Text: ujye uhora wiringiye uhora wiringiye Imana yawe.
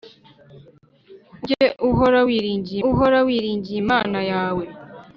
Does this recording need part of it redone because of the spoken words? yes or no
no